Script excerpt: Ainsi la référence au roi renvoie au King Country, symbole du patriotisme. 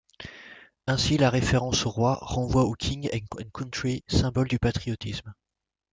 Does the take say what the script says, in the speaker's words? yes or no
no